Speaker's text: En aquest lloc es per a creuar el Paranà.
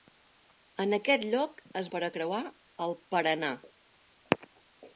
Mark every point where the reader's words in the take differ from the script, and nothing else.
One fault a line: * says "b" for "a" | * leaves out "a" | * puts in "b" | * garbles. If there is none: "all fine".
all fine